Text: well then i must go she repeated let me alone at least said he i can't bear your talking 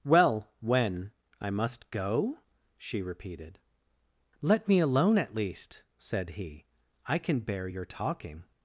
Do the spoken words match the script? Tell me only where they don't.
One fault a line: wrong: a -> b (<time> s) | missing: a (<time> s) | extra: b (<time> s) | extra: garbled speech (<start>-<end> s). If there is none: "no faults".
wrong: then -> when (0.6 s)
wrong: can't -> can (7.2 s)